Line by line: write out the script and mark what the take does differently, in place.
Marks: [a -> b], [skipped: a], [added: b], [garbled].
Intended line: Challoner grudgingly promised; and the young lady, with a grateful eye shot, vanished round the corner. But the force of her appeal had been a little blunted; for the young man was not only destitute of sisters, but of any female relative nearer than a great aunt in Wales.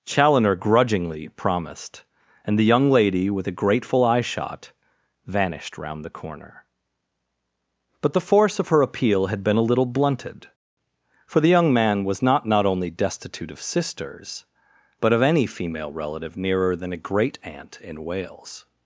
Challoner grudgingly promised; and the young lady, with a grateful eye shot, vanished round the corner. But the force of her appeal had been a little blunted; for the young man was not [added: not] only destitute of sisters, but of any female relative nearer than a great aunt in Wales.